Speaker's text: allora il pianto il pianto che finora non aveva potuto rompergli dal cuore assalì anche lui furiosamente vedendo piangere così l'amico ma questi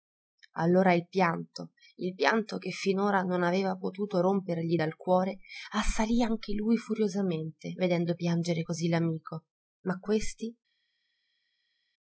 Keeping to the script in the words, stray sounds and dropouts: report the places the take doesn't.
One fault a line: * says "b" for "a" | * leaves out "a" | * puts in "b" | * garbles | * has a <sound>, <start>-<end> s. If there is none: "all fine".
all fine